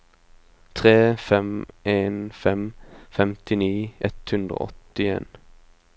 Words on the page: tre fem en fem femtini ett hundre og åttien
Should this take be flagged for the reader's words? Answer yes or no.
no